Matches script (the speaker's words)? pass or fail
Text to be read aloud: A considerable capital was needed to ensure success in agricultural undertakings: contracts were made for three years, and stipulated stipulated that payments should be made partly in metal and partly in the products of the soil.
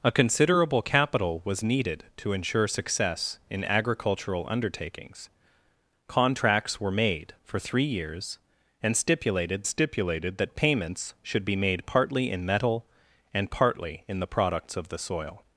pass